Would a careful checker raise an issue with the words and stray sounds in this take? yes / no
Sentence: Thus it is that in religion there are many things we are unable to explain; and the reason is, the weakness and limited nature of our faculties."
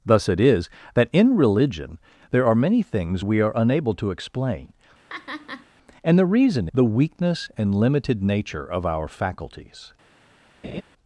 yes